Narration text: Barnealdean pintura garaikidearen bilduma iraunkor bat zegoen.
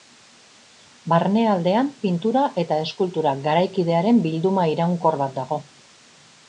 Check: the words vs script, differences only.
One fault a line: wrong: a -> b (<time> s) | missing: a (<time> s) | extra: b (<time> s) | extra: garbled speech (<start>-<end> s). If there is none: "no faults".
extra: eta eskultura (2.6 s)
wrong: zegoen -> dago (5.4 s)